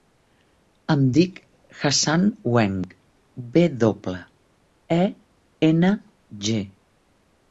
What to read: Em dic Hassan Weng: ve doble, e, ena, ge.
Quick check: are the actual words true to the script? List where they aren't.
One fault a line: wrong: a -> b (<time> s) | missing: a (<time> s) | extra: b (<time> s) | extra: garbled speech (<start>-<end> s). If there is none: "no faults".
no faults